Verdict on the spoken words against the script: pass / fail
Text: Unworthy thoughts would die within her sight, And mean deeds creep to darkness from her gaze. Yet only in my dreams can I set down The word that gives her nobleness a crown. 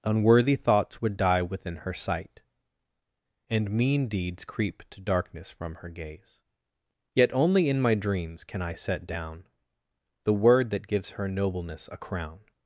pass